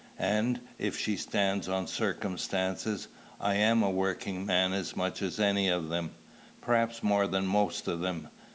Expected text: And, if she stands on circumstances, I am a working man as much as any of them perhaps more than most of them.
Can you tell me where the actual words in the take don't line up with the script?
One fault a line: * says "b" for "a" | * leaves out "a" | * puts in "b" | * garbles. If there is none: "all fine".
all fine